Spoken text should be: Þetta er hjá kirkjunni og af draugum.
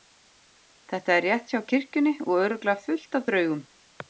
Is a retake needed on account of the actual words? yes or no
yes